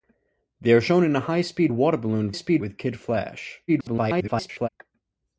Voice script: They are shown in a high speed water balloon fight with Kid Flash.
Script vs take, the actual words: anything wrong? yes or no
yes